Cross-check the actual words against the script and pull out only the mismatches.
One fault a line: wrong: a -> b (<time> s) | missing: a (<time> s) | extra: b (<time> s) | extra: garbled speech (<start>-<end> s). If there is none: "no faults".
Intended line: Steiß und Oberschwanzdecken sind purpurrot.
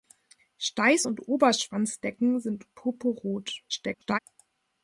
extra: garbled speech (3.7-4.2 s)